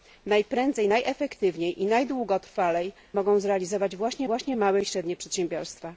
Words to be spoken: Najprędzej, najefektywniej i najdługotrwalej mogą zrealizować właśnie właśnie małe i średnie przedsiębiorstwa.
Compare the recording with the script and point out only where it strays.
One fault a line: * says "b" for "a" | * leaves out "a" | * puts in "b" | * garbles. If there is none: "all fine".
all fine